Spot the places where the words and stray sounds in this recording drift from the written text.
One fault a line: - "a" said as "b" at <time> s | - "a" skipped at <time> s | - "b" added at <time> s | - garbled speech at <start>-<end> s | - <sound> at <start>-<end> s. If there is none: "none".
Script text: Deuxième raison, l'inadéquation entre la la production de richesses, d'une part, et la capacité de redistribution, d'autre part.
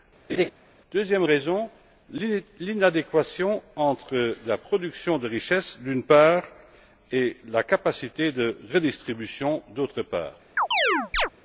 - laugh at 0.3-0.5 s
- "la" skipped at 4.6 s
- chirp at 10.6-11.3 s